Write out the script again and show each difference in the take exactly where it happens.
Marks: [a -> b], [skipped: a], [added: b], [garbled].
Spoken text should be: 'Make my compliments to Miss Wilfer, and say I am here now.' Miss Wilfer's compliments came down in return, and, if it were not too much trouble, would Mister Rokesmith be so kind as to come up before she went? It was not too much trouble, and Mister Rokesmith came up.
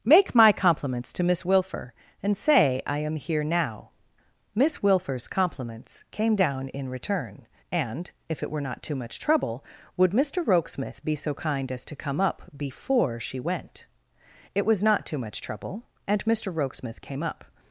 'Make my compliments to Miss Wilfer, and say I am here now.' Miss Wilfer's compliments came down in return, and, if it were not too much trouble, would Mister Rokesmith be so kind as to come up before she went? It was not too much trouble, and Mister Rokesmith came up.